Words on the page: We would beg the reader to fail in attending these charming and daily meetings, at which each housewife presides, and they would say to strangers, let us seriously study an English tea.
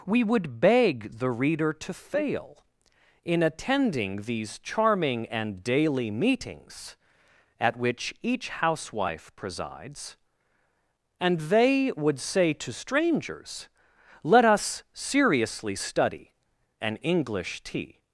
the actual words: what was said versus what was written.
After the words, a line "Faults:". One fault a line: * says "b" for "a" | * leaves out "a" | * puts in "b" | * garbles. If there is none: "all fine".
We would beg the reader to fail in attending these charming and daily meetings, at which each housewife presides, and they would say to strangers, let us seriously study an English tea.
Faults:
all fine